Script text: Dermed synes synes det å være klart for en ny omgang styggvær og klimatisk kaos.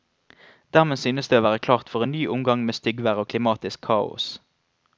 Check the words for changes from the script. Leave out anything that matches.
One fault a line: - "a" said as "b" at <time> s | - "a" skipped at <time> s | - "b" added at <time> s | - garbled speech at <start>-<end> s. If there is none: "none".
- "synes" skipped at 1.3 s
- "med" added at 2.7 s